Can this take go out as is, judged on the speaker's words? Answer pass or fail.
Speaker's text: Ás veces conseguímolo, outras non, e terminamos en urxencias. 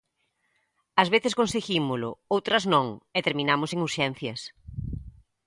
pass